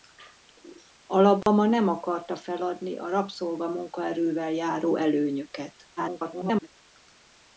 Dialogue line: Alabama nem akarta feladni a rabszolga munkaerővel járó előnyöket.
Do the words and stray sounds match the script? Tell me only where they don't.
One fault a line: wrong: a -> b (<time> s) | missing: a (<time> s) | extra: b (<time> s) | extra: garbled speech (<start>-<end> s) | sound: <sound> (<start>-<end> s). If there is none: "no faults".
sound: dropout (1.4-1.5 s)
extra: garbled speech (6.0-6.7 s)